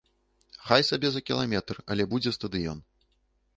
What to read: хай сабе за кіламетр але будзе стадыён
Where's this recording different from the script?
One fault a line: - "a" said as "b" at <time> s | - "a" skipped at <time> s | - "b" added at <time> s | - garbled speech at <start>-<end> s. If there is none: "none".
none